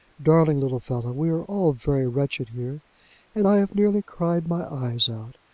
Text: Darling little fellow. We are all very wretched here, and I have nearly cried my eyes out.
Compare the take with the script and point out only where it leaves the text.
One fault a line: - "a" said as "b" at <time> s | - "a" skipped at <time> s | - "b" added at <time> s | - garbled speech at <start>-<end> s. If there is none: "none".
none